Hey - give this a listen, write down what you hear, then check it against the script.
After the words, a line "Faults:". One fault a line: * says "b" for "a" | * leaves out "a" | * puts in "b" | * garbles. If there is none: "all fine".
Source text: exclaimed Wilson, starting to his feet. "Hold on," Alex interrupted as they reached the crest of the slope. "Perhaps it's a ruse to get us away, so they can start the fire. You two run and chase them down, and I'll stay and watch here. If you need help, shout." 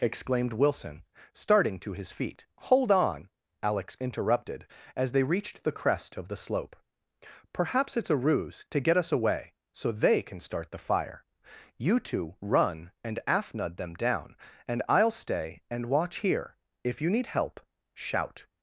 exclaimed Wilson, starting to his feet. "Hold on," Alex interrupted as they reached the crest of the slope. "Perhaps it's a ruse to get us away, so they can start the fire. You two run and afnud them down, and I'll stay and watch here. If you need help, shout."
Faults:
* says "afnud" for "chase"